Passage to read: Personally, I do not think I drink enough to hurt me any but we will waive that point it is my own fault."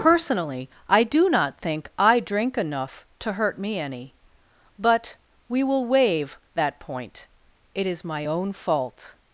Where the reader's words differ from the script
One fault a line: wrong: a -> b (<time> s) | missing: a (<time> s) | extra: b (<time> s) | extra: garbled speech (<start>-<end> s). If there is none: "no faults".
no faults